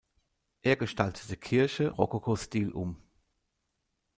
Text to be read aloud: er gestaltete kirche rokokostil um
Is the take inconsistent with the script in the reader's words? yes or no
no